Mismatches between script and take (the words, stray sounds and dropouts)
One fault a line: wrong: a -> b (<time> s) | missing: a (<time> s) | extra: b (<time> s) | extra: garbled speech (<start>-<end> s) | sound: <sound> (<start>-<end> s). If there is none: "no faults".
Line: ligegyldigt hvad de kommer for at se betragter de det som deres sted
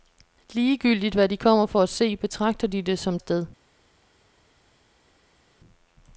missing: deres (3.2 s)